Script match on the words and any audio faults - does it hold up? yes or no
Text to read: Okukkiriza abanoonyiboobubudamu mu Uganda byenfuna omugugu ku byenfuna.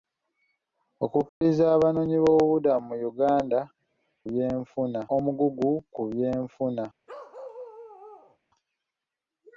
no